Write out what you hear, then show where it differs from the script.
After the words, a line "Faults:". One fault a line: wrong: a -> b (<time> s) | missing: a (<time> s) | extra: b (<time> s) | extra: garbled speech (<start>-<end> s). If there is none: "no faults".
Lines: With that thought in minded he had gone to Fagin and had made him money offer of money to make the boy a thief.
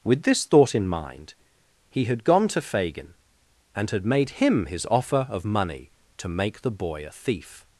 With this thought in mind he had gone to Fagin and had made him his offer of money to make the boy a thief.
Faults:
wrong: that -> this (0.2 s)
wrong: minded -> mind (0.9 s)
wrong: money -> his (4.7 s)